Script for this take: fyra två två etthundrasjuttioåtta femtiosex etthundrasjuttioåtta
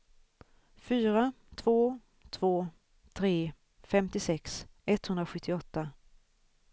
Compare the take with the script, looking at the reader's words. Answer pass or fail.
fail